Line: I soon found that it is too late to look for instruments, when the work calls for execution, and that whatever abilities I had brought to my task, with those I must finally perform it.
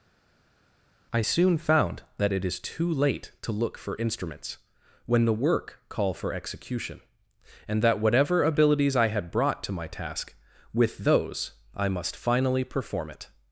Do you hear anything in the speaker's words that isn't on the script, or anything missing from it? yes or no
yes